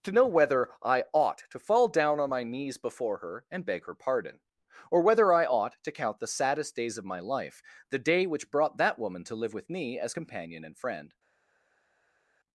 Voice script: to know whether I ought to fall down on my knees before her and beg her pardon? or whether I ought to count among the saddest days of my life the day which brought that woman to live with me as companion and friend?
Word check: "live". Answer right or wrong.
right